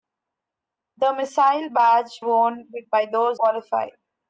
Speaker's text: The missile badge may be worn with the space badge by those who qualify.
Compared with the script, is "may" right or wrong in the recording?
wrong